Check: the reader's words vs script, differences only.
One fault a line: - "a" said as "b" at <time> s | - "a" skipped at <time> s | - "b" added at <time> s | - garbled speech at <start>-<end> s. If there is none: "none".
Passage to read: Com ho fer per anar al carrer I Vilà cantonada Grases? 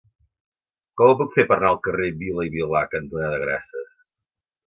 - "puc" added at 1.2 s
- "Vila" added at 2.2 s